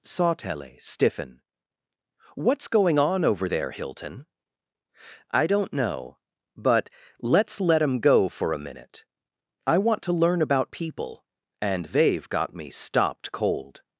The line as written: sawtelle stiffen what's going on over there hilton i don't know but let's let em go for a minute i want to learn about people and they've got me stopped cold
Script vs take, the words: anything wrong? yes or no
no